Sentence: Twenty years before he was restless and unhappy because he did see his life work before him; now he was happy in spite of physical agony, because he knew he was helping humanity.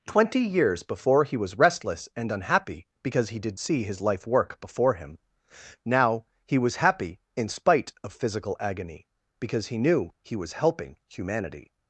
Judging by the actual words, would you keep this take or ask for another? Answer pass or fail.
pass